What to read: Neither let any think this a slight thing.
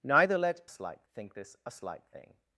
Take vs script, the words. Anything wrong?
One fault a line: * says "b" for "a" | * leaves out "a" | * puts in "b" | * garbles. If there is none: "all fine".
* says "slight" for "any"